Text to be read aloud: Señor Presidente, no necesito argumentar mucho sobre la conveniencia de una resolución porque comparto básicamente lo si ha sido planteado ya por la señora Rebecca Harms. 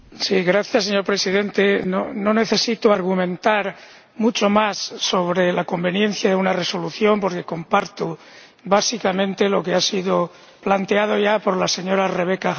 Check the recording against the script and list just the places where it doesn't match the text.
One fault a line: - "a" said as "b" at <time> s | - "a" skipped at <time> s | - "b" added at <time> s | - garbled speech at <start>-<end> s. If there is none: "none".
- "más" added at 4.5 s
- "si" said as "que" at 9.6 s